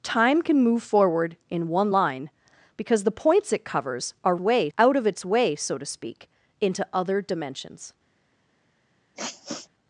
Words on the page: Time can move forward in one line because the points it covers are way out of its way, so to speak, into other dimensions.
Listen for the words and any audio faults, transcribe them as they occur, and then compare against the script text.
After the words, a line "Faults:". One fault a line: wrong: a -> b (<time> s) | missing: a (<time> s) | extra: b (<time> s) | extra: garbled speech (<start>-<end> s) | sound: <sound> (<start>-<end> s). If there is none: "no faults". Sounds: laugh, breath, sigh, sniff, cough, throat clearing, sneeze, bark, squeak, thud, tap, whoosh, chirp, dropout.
Time can move forward in one line because the points it covers are way out of its way, so to speak, into other dimensions.
Faults:
sound: sniff (9.1-9.7 s)